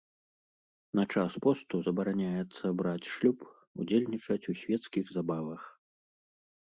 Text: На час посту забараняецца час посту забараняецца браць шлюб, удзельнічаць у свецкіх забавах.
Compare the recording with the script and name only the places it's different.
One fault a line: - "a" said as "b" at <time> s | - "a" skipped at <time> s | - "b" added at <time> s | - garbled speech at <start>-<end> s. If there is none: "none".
- "час посту забараняецца" skipped at 2.6 s